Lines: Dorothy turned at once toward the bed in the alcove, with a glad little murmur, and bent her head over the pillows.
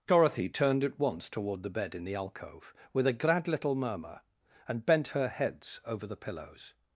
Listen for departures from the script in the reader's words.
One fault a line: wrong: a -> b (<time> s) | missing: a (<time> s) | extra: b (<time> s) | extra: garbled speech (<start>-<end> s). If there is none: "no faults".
wrong: head -> heads (5.3 s)